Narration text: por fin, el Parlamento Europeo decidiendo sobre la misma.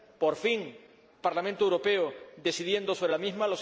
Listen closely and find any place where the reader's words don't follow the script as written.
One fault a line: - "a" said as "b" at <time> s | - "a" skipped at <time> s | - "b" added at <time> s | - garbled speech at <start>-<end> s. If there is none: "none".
- "el" skipped at 0.8 s